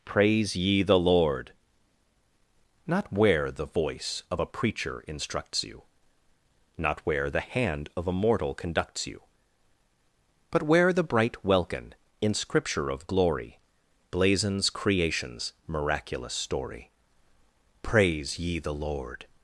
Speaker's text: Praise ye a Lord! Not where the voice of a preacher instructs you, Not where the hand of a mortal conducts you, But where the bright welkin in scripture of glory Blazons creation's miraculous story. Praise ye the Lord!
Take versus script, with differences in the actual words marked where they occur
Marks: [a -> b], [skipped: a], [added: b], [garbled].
Praise ye [a -> the] Lord! Not where the voice of a preacher instructs you, Not where the hand of a mortal conducts you, But where the bright welkin in scripture of glory Blazons creation's miraculous story. Praise ye the Lord!